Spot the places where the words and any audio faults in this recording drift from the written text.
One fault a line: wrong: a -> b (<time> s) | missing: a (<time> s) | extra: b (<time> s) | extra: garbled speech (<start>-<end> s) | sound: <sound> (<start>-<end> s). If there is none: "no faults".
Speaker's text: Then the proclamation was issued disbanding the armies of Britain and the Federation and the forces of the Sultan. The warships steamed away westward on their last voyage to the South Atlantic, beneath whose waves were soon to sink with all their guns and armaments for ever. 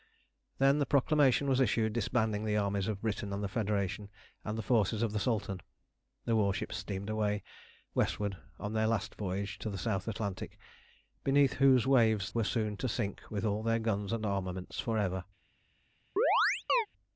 sound: chirp (16.2-16.9 s)